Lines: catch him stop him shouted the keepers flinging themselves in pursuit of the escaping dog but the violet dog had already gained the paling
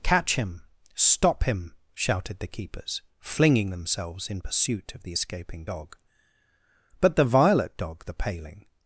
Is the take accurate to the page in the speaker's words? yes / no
no